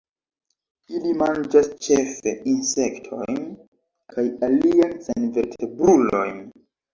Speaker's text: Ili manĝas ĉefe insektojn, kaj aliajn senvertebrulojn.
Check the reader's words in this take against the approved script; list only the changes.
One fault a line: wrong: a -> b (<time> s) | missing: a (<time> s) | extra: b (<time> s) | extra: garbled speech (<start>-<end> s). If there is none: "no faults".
no faults